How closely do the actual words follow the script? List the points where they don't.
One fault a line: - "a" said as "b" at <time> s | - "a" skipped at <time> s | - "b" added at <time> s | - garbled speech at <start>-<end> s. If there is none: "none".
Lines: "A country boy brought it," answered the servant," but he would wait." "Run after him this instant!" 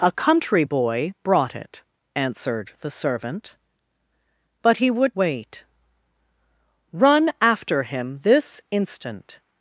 none